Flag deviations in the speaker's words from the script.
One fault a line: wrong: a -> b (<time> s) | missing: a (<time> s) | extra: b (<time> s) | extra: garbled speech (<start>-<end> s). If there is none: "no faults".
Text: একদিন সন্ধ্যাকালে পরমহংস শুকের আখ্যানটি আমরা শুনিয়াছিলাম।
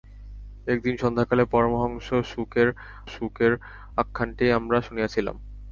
extra: শুকের (3.1 s)